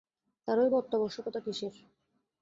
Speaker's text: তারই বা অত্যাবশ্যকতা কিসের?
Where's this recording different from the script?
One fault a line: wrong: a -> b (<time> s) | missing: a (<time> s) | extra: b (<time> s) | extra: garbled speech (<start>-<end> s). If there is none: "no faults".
no faults